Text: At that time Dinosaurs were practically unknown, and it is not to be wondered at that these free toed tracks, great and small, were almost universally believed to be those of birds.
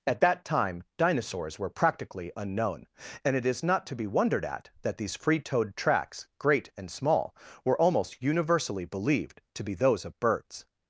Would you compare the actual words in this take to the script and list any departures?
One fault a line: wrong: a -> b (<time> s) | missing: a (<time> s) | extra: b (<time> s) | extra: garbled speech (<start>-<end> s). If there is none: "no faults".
no faults